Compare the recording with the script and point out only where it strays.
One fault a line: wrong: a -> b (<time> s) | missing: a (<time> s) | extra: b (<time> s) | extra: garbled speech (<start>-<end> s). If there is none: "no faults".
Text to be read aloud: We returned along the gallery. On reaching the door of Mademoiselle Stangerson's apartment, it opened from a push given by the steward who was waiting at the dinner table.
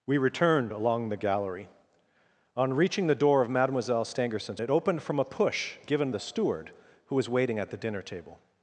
missing: apartment (4.6 s)
missing: by (6.1 s)